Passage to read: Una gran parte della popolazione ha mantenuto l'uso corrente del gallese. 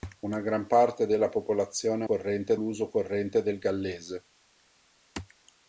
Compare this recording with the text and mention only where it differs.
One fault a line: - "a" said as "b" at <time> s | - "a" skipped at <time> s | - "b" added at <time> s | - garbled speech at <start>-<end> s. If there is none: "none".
- "mantenuto" said as "corrente" at 2.0 s